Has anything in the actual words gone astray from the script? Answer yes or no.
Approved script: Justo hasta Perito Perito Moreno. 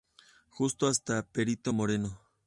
yes